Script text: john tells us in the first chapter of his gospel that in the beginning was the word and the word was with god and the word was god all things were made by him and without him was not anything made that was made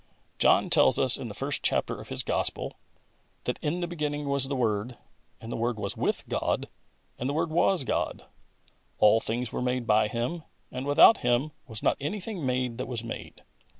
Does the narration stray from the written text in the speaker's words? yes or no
no